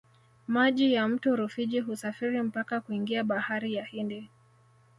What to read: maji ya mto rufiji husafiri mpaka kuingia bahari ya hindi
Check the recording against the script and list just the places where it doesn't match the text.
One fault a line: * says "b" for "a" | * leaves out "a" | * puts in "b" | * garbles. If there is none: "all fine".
all fine